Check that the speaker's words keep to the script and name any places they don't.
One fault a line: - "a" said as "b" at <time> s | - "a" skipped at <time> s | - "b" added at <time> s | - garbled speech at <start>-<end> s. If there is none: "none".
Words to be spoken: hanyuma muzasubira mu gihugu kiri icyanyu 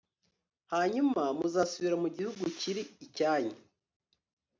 none